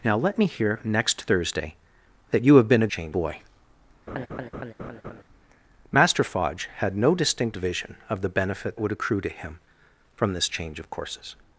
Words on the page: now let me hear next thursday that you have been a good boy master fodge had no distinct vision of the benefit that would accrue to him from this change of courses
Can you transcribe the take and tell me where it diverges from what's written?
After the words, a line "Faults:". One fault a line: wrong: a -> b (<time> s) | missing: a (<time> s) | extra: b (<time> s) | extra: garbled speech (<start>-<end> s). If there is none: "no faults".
now let me hear next thursday that you have been a change boy master fodge had no distinct vision of the benefit would accrue to him from this change of courses
Faults:
wrong: good -> change (2.9 s)
missing: that (8.8 s)